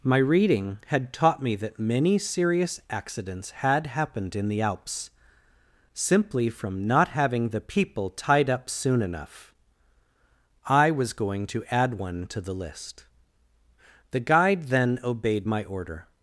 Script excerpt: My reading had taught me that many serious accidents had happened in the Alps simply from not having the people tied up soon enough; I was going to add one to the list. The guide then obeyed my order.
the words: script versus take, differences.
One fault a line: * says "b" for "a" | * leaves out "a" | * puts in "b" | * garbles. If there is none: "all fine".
all fine